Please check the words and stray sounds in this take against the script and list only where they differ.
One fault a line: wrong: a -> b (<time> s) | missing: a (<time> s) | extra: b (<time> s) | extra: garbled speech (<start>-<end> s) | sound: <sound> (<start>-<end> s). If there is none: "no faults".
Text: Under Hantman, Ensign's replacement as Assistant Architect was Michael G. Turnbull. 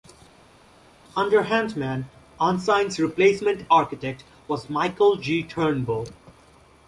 missing: as Assistant (3.7 s)